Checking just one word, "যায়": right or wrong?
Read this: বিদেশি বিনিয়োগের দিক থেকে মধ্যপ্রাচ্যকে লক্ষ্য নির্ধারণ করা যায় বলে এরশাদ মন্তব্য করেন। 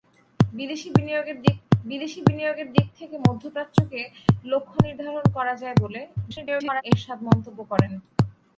right